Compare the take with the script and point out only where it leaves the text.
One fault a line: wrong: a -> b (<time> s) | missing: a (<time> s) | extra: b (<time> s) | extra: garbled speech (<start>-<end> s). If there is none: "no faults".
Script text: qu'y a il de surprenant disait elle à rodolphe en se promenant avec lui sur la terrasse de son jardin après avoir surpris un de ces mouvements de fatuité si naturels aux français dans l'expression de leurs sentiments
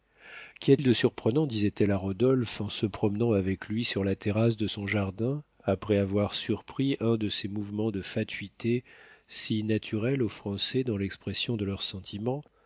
no faults